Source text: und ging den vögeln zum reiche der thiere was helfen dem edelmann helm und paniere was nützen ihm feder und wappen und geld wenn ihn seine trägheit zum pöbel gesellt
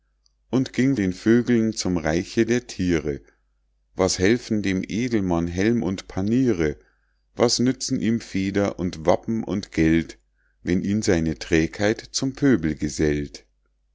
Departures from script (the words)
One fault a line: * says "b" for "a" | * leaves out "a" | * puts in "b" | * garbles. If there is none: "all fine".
all fine